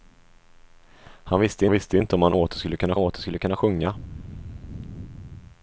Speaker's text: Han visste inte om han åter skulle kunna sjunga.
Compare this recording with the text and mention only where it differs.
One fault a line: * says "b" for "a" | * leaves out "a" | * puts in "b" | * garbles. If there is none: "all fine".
* puts in "visste"
* puts in "åter skulle kunna"